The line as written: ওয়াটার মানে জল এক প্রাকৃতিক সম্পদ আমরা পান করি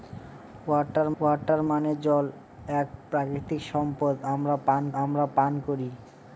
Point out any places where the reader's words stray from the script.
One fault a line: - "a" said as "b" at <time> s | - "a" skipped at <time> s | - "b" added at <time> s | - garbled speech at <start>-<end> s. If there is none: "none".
- "ওয়াটার" added at 1.2 s
- "আমরা পান" added at 5.0 s